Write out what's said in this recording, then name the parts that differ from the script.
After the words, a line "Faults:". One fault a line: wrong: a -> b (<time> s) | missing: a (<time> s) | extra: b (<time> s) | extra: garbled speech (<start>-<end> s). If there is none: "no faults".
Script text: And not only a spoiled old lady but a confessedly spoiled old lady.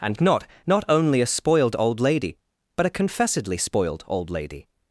And not not only a spoiled old lady but a confessedly spoiled old lady.
Faults:
extra: not (0.7 s)